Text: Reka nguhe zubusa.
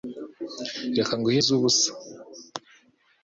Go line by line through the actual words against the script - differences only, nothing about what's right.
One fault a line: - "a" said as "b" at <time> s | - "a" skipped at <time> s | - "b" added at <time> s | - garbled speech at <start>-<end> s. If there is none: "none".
none